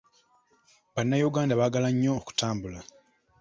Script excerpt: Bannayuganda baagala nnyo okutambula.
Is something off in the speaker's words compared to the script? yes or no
no